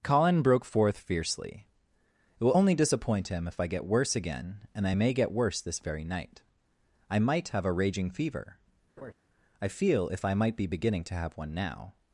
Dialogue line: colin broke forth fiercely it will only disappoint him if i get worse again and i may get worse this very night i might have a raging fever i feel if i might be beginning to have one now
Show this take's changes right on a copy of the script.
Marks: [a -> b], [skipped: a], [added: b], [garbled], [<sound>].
colin broke forth fiercely it will only disappoint him if i get worse again and i may get worse this very night i might have a raging fever [laugh] i feel if i might be beginning to have one now